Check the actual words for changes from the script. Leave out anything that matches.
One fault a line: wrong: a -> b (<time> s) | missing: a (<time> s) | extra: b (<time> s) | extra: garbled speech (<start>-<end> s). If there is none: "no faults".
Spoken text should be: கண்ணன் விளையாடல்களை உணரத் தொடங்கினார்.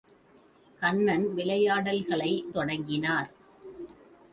missing: உணரத் (2.3 s)